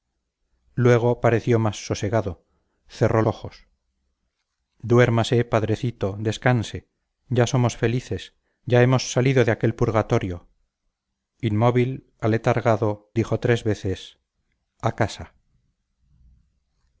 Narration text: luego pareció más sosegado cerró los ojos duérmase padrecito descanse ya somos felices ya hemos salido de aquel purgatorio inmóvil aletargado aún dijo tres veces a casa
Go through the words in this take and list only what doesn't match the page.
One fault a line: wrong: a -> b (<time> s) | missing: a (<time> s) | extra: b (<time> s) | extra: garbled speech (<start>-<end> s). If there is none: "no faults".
missing: los (3.2 s)
missing: aún (13.1 s)